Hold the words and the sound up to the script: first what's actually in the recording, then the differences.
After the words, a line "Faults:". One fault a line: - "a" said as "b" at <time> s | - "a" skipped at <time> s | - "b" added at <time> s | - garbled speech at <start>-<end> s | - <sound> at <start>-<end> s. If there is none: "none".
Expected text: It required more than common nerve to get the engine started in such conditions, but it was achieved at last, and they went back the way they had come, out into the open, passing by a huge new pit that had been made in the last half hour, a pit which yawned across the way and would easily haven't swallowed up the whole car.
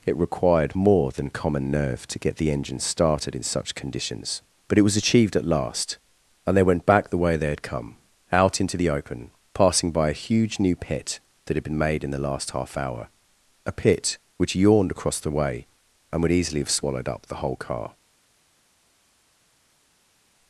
It required more than common nerve to get the engine started in such conditions, but it was achieved at last, and they went back the way they had come, out into the open, passing by a huge new pit that had been made in the last half hour, a pit which yawned across the way and would easily have swallowed up the whole car.
Faults:
- "haven't" said as "have" at 16.6 s